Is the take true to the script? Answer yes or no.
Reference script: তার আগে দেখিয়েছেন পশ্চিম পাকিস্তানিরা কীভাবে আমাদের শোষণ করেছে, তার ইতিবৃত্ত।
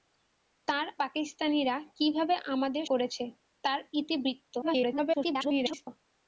no